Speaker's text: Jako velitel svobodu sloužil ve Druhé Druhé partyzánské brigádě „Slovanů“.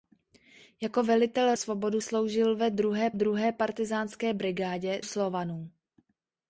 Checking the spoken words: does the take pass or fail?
pass